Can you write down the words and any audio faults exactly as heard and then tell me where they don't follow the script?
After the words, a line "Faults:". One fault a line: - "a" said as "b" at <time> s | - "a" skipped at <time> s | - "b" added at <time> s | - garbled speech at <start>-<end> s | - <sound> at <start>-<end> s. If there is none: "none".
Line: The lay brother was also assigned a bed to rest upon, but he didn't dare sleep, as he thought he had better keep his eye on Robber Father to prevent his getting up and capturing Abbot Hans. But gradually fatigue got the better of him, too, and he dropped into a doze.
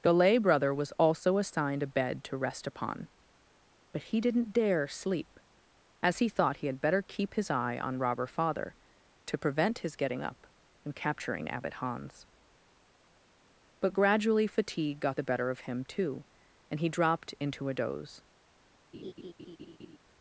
The lay brother was also assigned a bed to rest upon, but he didn't dare sleep, as he thought he had better keep his eye on Robber Father to prevent his getting up and capturing Abbot Hans. But gradually fatigue got the better of him, too, and he dropped into a doze.
Faults:
- laugh at 18.9-20.0 s